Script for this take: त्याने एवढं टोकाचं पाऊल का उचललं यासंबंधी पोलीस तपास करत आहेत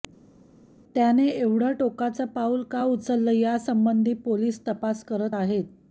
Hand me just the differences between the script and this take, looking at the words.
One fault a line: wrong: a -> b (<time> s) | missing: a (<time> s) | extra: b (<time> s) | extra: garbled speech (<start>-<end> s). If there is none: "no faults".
no faults